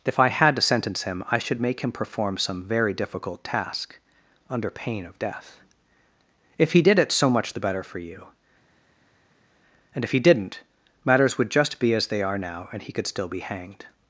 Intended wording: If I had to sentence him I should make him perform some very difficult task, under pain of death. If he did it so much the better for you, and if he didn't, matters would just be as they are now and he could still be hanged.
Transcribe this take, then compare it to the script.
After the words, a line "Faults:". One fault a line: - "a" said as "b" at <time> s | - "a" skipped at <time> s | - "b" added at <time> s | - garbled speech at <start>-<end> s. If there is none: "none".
If I had to sentence him I should make him perform some very difficult task, under pain of death. If he did it so much the better for you, and if he didn't, matters would just be as they are now and he could still be hanged.
Faults:
none